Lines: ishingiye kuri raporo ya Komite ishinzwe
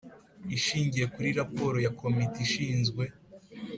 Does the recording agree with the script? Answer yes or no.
yes